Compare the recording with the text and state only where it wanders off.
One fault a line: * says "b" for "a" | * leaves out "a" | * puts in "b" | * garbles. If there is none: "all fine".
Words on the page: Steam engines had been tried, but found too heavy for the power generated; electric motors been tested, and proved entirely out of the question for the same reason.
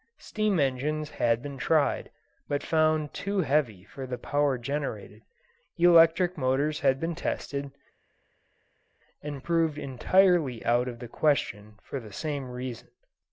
* puts in "had"